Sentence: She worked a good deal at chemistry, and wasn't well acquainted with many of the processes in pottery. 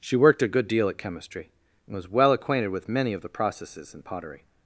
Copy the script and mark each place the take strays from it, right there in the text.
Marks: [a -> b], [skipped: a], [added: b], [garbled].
She worked a good deal at chemistry, and [wasn't -> was] well acquainted with many of the processes in pottery.